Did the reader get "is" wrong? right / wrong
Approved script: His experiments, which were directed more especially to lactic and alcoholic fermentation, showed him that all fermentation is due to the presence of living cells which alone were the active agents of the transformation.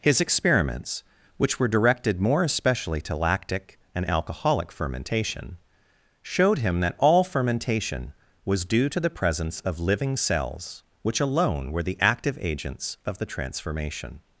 wrong